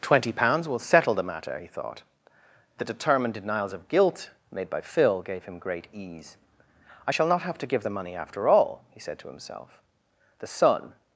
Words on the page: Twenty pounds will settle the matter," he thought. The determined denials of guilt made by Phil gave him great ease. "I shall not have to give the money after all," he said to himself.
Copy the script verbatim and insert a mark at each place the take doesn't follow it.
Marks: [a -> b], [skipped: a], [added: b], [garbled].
Twenty pounds will settle the matter," he thought. The determined denials of guilt made by Phil gave him great ease. "I shall not have to give the money after all," he said to himself. [added: The son]